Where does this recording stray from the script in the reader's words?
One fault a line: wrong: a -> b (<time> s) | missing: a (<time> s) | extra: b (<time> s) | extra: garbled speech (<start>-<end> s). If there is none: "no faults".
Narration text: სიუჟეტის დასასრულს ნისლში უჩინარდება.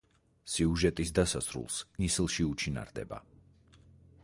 no faults